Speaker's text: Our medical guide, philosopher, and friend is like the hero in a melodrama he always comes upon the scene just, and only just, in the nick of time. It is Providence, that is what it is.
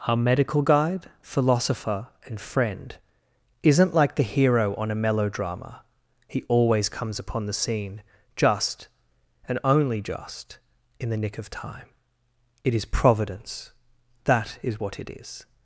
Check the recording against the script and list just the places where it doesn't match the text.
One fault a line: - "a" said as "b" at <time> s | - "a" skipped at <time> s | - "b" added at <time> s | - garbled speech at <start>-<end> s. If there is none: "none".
- "is" said as "isn't" at 3.6 s
- "in" said as "on" at 4.8 s